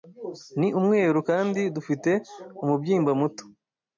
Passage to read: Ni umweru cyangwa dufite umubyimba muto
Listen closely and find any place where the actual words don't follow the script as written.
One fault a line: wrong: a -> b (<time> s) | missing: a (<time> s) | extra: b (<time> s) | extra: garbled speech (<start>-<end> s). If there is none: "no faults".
wrong: cyangwa -> kandi (1.3 s)